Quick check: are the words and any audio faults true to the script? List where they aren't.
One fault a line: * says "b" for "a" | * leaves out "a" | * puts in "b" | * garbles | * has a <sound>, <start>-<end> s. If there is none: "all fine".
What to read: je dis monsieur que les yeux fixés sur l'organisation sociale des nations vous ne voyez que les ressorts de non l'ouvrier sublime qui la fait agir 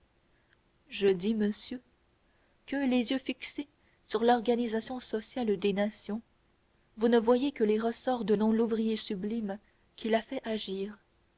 all fine